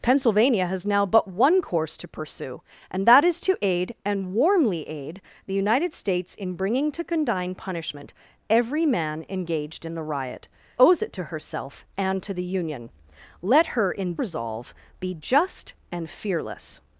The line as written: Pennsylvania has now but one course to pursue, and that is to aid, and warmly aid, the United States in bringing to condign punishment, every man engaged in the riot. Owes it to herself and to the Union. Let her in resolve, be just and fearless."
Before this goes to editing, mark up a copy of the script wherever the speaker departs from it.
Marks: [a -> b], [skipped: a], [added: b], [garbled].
Pennsylvania has now but one course to pursue, and that is to aid, and warmly aid, the United States in bringing to condign punishment, every man engaged in the riot. Owes it to herself and to the Union. Let her in resolve, be just and fearless."